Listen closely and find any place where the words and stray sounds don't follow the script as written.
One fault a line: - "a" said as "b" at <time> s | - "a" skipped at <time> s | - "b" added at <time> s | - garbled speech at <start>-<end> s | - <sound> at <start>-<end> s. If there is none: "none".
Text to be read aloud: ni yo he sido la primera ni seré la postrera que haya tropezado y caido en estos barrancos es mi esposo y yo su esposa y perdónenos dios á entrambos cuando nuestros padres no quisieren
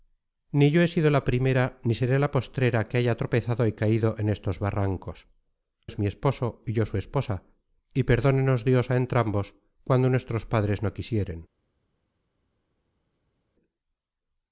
none